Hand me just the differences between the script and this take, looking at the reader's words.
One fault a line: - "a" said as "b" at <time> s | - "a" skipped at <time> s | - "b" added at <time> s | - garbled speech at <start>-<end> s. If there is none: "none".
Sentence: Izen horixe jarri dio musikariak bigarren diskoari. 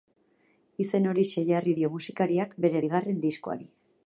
- "bere" added at 2.7 s